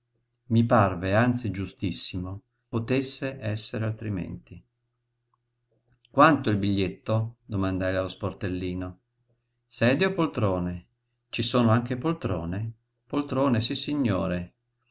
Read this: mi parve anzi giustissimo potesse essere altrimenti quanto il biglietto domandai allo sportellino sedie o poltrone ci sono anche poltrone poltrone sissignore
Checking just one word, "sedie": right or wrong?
right